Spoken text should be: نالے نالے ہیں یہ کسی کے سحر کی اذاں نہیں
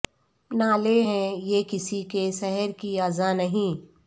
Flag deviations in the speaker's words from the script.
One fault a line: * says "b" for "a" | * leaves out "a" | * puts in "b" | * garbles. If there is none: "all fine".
* leaves out "نالے"